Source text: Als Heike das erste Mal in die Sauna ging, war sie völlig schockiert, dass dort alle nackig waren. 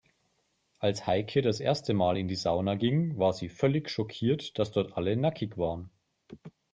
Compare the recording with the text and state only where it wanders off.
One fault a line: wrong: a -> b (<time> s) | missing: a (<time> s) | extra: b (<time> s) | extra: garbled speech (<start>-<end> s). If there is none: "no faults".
no faults